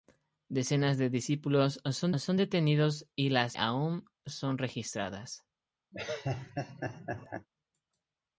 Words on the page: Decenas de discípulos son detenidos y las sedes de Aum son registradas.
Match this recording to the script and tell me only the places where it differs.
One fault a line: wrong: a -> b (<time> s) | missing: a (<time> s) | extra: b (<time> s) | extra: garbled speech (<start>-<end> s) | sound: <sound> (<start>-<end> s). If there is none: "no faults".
extra: son (2.2 s)
missing: sedes de (3.5 s)
sound: laugh (5.9-7.5 s)